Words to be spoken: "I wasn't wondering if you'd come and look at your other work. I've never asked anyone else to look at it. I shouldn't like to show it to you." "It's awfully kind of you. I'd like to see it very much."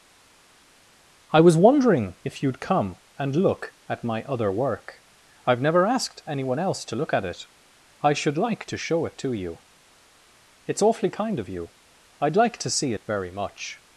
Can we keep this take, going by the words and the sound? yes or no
no